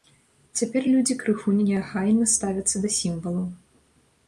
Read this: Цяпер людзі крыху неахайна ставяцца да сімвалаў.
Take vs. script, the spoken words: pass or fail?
pass